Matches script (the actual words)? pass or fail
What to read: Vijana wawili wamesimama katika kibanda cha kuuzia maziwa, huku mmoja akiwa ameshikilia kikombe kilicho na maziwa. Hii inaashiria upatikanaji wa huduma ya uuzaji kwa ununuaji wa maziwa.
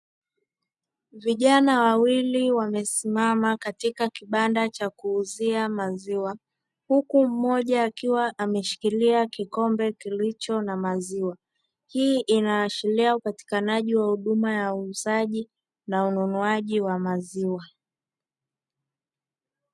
fail